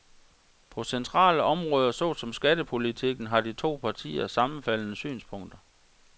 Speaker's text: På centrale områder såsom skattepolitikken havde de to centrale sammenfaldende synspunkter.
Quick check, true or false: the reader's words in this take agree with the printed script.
false